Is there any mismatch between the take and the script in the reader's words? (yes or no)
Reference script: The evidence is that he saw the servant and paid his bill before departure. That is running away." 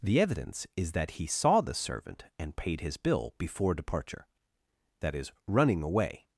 no